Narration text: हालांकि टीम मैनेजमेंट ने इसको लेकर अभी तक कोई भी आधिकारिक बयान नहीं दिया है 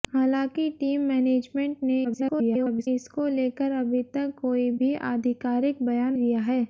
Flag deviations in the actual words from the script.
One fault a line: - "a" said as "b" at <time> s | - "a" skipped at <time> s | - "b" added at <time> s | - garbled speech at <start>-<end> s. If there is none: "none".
- garbled speech at 2.0-2.9 s
- "नहीं" skipped at 6.1 s